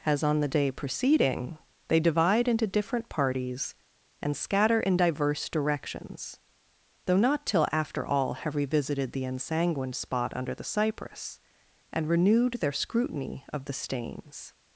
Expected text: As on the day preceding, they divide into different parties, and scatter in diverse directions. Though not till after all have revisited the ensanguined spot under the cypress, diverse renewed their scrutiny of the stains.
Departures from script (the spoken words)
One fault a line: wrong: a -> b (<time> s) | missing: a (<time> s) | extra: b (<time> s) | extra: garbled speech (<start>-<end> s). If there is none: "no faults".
wrong: diverse -> and (11.9 s)